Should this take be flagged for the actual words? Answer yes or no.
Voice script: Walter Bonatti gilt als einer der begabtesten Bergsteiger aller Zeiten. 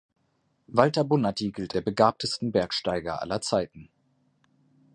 yes